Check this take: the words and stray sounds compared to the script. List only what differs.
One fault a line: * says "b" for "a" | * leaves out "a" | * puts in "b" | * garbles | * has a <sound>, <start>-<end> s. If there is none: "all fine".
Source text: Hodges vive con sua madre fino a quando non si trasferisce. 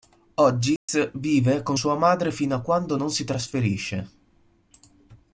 * has a dropout, 0.8-0.9 s